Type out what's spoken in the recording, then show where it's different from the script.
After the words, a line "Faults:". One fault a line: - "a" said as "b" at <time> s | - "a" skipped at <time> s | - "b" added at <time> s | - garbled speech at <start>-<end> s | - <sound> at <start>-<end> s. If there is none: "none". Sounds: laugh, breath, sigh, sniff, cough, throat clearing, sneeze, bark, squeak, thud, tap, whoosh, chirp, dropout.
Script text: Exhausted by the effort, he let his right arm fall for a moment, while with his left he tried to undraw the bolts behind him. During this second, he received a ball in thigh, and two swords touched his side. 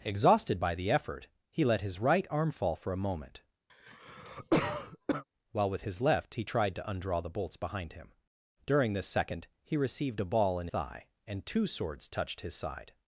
Exhausted by the effort, he let his right arm fall for a moment, while with his left he tried to undraw the bolts behind him. During this second, he received a ball in thigh, and two swords touched his side.
Faults:
- cough at 3.7-5.2 s